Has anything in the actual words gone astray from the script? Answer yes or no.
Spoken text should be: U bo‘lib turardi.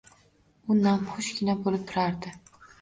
yes